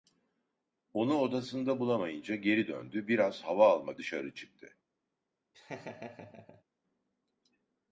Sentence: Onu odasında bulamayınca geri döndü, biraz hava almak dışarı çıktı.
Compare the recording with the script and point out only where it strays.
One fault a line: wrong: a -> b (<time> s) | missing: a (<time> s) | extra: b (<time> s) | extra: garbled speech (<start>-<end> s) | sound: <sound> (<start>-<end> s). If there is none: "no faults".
sound: laugh (5.5-6.6 s)